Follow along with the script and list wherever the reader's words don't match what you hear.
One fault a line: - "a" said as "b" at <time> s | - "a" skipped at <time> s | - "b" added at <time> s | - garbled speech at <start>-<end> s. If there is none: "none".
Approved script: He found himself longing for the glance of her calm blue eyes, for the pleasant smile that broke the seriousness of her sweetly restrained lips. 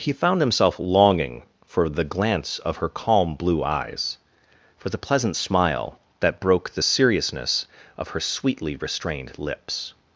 none